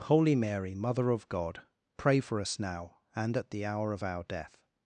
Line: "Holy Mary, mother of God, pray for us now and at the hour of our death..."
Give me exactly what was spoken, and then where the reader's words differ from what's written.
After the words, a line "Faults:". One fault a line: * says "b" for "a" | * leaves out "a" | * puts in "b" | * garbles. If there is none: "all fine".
"Holy Mary, mother of God, pray for us now and at the hour of our death..."
Faults:
all fine